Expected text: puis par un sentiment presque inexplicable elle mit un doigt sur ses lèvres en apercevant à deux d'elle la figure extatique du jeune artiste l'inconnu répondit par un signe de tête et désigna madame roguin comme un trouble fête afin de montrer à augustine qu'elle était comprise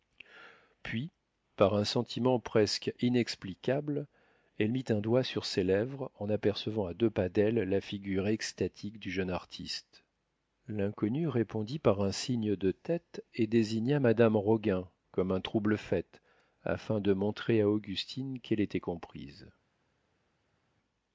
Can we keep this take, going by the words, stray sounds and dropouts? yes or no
no